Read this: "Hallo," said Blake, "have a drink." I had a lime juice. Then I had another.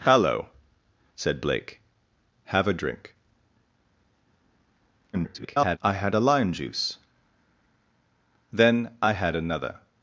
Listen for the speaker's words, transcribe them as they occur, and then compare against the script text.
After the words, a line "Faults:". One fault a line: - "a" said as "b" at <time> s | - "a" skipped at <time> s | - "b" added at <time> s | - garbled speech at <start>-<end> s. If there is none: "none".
"Hallo," said Blake, "have a drink." [garbled] I had a lime juice. Then I had another.
Faults:
- garbled speech at 5.1-5.8 s